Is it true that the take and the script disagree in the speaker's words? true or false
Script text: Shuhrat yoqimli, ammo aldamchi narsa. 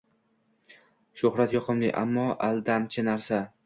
false